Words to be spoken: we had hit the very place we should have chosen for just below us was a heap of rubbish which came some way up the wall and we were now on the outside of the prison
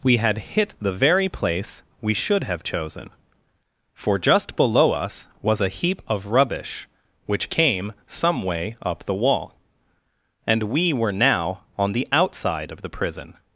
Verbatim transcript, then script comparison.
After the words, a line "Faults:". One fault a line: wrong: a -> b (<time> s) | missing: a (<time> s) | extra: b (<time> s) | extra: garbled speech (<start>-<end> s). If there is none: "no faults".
we had hit the very place we should have chosen for just below us was a heap of rubbish which came some way up the wall and we were now on the outside of the prison
Faults:
no faults